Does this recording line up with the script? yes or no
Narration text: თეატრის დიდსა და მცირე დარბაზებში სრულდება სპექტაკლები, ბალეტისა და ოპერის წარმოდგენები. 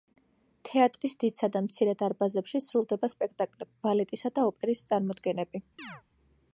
yes